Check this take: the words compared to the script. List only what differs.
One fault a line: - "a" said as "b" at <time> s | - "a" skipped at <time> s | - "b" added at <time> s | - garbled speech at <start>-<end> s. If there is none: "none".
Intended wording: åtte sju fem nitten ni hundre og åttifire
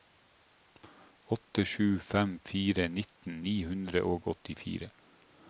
- "fire" added at 2.5 s